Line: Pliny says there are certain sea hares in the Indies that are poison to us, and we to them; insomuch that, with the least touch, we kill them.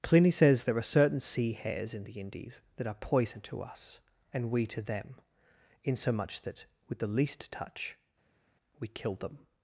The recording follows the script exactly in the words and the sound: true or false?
true